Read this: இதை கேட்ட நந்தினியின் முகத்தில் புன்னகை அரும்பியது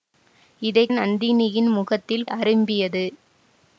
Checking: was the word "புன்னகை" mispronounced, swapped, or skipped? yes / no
yes